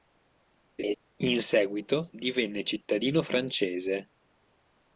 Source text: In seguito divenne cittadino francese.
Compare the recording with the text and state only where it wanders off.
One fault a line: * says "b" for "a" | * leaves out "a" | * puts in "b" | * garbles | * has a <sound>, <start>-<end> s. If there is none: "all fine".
* has a laugh, 0.8-1.0 s